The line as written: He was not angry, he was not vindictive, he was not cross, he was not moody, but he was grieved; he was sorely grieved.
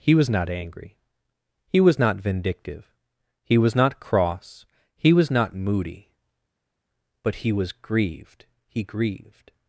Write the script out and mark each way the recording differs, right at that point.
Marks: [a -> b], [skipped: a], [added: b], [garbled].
He was not angry, he was not vindictive, he was not cross, he was not moody, but he was grieved; he [skipped: was sorely] grieved.